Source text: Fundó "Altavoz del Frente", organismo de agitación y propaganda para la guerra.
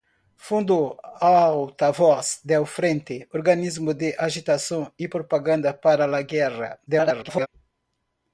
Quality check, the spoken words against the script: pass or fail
fail